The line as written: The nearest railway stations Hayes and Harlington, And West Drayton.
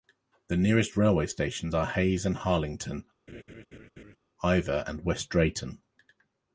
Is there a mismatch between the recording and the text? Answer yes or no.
yes